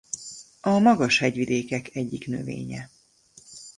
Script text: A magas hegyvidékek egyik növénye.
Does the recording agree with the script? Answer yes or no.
yes